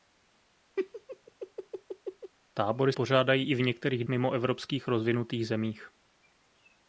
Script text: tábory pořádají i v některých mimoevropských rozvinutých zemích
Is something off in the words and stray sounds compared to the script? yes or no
yes